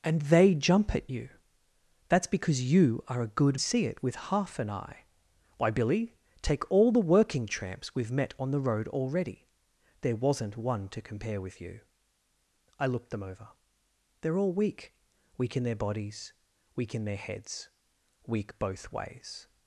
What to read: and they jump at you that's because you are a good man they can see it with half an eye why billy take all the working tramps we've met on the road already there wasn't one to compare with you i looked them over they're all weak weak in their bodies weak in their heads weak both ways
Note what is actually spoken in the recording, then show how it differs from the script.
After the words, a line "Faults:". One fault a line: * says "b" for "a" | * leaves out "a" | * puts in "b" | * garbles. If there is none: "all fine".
and they jump at you that's because you are a good see it with half an eye why billy take all the working tramps we've met on the road already there wasn't one to compare with you i looked them over they're all weak weak in their bodies weak in their heads weak both ways
Faults:
* leaves out "man they can"